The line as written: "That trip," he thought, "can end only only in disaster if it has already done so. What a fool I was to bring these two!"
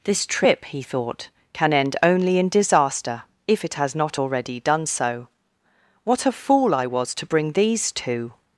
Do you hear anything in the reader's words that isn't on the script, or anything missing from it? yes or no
yes